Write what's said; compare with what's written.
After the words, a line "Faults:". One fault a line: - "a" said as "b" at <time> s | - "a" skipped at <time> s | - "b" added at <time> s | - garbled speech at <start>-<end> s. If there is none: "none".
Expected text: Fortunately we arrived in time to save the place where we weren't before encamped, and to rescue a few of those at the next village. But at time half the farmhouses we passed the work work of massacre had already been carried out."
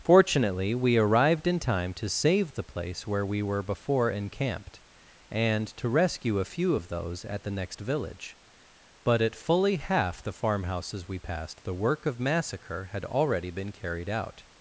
Fortunately we arrived in time to save the place where we were before encamped, and to rescue a few of those at the next village. But at fully half the farmhouses we passed the work of massacre had already been carried out."
Faults:
- "weren't" said as "were" at 3.4 s
- "time" said as "fully" at 9.3 s
- "work" skipped at 12.0 s